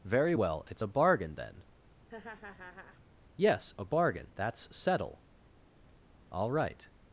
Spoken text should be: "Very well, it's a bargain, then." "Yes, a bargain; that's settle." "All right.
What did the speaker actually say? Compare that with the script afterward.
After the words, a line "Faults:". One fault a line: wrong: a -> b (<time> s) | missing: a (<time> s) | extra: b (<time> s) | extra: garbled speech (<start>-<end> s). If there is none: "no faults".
"Very well, it's a bargain, then." "Yes, a bargain; that's settle." "All right.
Faults:
no faults